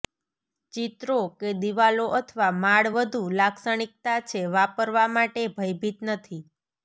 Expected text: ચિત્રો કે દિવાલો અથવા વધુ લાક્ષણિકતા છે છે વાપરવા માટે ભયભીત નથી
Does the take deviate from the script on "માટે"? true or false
false